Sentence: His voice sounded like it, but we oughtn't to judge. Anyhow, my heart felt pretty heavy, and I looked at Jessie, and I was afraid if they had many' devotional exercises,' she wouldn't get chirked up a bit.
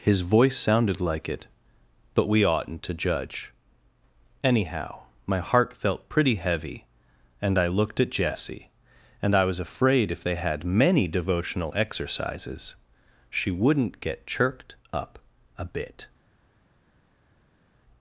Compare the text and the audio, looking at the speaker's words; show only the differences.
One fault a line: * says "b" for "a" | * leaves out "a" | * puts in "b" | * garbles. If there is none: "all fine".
all fine